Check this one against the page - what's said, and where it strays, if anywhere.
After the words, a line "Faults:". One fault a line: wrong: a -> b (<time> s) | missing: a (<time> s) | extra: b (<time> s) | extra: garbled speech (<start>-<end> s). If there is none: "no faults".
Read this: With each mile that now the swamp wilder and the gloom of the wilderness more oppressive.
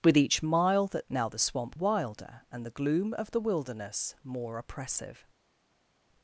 With each mile that now the swamp wilder and the gloom of the wilderness more oppressive.
Faults:
no faults